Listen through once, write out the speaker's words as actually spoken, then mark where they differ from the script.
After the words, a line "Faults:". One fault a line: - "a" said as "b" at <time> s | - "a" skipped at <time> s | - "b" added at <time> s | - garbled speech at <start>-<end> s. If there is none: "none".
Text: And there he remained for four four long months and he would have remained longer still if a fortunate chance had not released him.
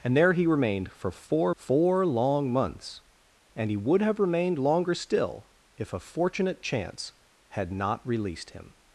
And there he remained for four four long months and he would have remained longer still if a fortunate chance had not released him.
Faults:
none